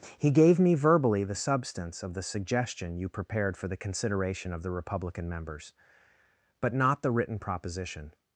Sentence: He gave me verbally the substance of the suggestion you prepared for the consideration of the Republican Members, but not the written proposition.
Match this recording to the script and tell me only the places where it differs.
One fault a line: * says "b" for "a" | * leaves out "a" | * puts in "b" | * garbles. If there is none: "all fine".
all fine